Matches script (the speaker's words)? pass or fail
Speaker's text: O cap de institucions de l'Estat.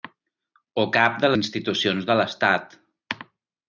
pass